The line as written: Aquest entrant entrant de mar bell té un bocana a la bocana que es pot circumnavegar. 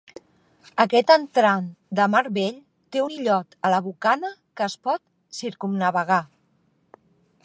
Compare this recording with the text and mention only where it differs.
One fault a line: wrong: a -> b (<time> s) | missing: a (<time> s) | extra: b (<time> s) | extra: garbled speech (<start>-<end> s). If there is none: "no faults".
missing: entrant (1.7 s)
wrong: bocana -> illot (3.1 s)